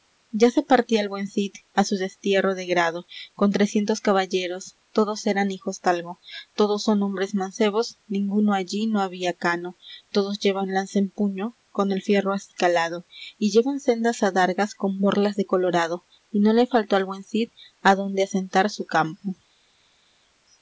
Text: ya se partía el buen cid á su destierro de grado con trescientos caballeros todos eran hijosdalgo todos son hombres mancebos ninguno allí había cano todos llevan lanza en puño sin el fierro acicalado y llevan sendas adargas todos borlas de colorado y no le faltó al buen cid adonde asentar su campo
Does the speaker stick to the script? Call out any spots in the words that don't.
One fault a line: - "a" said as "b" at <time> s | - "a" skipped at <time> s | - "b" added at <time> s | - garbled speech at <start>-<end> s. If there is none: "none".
- "no" added at 8.9 s
- "sin" said as "con" at 11.7 s
- "todos" said as "con" at 14.7 s